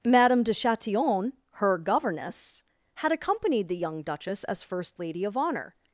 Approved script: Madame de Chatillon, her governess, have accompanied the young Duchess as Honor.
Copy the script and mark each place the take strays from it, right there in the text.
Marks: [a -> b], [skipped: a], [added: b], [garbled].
Madame de Chatillon, her governess, [have -> had] accompanied the young Duchess as [added: first Lady of] Honor.